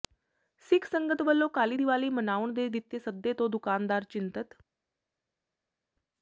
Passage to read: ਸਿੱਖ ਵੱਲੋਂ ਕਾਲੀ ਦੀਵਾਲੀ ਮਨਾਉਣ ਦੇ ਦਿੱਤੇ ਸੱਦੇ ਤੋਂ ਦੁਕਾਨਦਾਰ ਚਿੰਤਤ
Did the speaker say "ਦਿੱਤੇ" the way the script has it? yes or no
yes